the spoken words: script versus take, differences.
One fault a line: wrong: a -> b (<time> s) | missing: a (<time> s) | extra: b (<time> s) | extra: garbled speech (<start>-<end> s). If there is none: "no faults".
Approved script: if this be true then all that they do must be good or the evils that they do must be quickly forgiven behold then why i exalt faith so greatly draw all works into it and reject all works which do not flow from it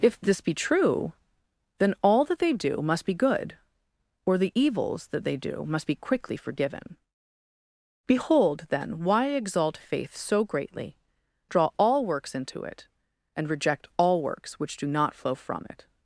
no faults